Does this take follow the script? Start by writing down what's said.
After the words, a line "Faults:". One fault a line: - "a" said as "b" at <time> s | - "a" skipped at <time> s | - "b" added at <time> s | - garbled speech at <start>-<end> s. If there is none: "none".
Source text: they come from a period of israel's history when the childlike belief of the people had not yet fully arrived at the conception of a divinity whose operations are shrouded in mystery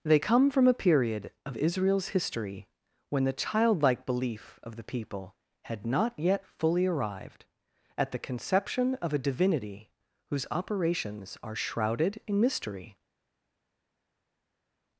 they come from a period of israel's history when the childlike belief of the people had not yet fully arrived at the conception of a divinity whose operations are shrouded in mystery
Faults:
none